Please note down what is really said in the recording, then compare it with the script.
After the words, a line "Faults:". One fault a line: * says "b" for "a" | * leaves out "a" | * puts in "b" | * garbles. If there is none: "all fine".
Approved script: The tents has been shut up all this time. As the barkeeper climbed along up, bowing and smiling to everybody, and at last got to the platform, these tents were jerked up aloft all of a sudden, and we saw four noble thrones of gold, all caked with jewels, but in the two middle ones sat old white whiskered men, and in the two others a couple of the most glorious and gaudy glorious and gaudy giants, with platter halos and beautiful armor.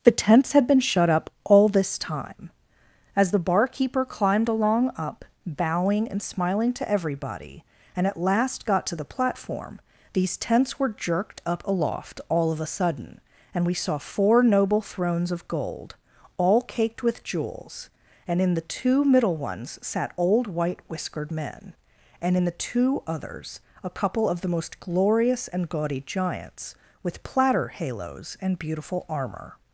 The tents had been shut up all this time. As the barkeeper climbed along up, bowing and smiling to everybody, and at last got to the platform, these tents were jerked up aloft all of a sudden, and we saw four noble thrones of gold, all caked with jewels, and in the two middle ones sat old white whiskered men, and in the two others a couple of the most glorious and gaudy giants, with platter halos and beautiful armor.
Faults:
* says "had" for "has"
* says "and" for "but"
* leaves out "glorious and gaudy"